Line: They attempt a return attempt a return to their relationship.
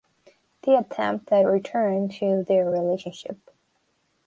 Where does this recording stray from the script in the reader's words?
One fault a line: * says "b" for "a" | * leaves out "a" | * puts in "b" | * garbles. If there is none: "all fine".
* leaves out "attempt a return"